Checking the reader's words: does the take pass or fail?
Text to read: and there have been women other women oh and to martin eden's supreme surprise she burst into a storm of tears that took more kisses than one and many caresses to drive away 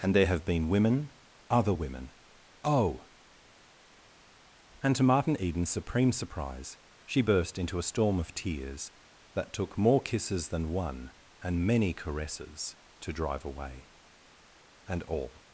fail